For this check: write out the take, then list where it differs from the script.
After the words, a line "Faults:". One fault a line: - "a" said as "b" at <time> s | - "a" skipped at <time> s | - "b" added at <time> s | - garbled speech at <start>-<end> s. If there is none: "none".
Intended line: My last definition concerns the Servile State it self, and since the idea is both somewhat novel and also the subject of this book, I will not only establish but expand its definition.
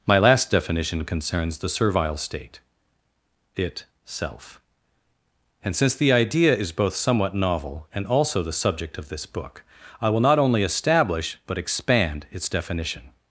My last definition concerns the Servile State it self, and since the idea is both somewhat novel and also the subject of this book, I will not only establish but expand its definition.
Faults:
none